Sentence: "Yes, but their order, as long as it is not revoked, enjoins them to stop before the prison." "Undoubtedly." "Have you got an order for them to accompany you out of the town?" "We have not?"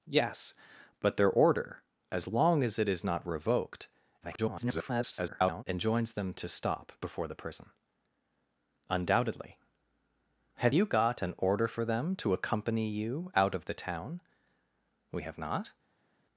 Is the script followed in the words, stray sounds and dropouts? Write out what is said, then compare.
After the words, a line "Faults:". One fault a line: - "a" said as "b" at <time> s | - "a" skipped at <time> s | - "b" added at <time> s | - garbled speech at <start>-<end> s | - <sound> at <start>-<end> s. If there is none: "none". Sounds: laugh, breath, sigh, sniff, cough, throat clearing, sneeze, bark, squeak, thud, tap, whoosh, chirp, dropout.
"Yes, but their order, as long as it is not revoked, [garbled] enjoins them to stop before the prison." "Undoubtedly." "Have you got an order for them to accompany you out of the town?" "We have not?"
Faults:
- garbled speech at 4.2-5.6 s